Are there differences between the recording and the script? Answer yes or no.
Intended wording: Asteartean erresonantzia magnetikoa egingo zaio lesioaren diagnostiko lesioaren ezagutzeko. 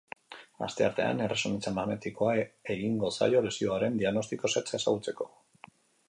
yes